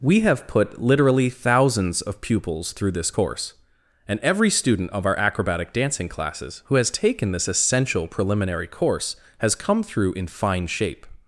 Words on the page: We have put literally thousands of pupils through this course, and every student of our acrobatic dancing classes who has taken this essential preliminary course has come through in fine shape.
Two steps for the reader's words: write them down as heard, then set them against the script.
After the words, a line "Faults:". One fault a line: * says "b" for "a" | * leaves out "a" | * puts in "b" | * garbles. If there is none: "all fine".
We have put literally thousands of pupils through this course, and every student of our acrobatic dancing classes who has taken this essential preliminary course has come through in fine shape.
Faults:
all fine